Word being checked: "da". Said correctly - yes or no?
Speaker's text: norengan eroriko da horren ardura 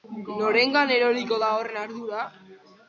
yes